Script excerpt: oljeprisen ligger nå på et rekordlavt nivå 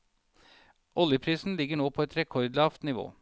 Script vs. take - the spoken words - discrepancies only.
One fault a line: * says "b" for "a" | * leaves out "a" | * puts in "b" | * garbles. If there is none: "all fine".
all fine